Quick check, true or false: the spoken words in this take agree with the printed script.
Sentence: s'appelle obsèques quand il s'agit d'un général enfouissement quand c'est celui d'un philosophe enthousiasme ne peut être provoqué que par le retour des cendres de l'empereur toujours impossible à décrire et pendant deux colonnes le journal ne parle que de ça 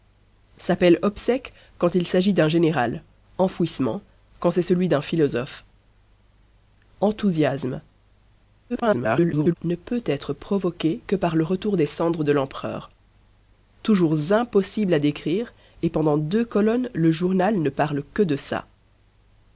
false